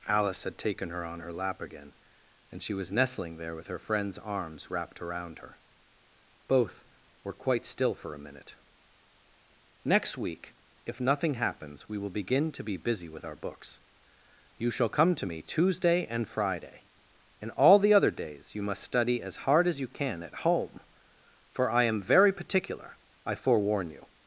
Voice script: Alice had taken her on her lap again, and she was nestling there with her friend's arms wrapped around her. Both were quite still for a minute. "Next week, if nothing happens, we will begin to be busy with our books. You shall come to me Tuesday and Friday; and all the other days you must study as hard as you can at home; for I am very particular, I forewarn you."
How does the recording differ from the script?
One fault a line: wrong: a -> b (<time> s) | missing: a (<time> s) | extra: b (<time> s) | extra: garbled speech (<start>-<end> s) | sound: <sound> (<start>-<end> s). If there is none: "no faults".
no faults